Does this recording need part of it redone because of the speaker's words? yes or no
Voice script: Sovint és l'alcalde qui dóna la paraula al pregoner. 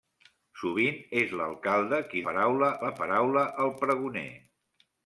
yes